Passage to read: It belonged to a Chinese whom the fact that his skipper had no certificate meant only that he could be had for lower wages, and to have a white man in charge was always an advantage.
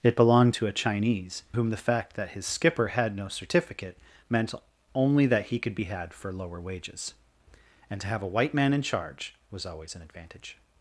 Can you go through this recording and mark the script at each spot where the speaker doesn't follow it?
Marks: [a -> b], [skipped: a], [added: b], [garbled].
It belonged to a Chinese whom the fact that his skipper had no certificate meant only that he could be had for lower wages, and to have a white man in charge was always an advantage.